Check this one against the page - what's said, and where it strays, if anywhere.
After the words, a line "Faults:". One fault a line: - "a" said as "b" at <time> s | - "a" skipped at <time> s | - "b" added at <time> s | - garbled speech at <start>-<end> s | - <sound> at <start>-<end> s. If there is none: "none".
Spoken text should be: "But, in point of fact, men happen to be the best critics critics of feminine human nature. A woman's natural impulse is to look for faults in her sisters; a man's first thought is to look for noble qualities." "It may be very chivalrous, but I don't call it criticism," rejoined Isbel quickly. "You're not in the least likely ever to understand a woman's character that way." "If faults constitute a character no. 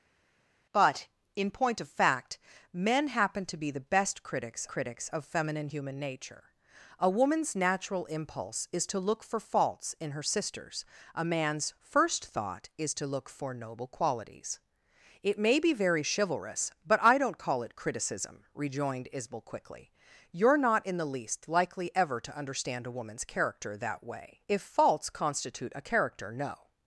"But, in point of fact, men happen to be the best critics critics of feminine human nature. A woman's natural impulse is to look for faults in her sisters; a man's first thought is to look for noble qualities." "It may be very chivalrous, but I don't call it criticism," rejoined Isbel quickly. "You're not in the least likely ever to understand a woman's character that way." "If faults constitute a character no.
Faults:
none